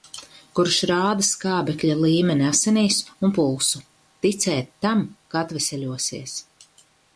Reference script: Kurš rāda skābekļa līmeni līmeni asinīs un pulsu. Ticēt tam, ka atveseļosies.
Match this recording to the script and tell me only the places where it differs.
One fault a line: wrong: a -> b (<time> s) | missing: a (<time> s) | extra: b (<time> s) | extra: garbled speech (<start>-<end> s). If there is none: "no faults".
missing: līmeni (2.5 s)